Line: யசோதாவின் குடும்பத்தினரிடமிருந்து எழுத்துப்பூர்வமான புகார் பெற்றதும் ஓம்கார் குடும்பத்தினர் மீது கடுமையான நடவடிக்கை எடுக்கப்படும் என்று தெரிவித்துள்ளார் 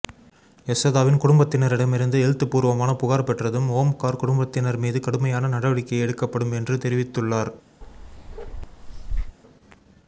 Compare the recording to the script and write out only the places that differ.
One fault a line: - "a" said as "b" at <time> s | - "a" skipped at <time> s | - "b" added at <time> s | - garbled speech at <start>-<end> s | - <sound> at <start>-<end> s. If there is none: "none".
- bark at 7.8-9.4 s